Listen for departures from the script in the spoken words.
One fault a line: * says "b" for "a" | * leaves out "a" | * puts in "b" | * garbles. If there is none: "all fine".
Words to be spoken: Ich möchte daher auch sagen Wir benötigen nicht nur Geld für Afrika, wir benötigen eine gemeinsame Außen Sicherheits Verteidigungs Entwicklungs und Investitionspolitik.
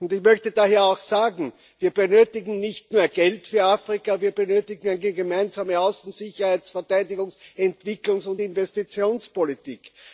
all fine